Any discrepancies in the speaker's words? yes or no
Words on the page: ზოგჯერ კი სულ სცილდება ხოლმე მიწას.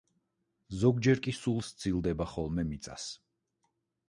no